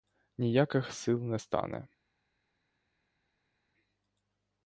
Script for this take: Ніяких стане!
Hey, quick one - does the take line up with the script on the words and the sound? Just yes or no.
no